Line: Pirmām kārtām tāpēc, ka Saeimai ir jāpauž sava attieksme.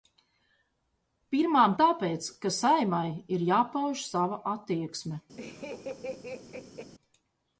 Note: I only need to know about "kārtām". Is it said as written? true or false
false